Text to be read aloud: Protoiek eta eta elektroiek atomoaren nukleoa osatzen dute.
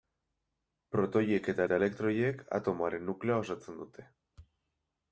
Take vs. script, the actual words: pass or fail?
pass